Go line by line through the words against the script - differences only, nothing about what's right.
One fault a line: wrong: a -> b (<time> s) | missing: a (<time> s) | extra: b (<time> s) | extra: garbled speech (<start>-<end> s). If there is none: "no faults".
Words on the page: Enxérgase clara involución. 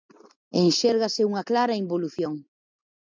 extra: unha (1.3 s)